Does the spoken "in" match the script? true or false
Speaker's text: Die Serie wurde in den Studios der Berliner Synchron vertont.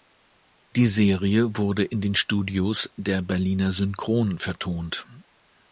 true